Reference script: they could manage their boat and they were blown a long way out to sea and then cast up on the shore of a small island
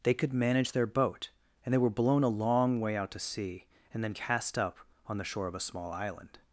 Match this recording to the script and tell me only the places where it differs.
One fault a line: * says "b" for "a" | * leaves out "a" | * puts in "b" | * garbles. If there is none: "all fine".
all fine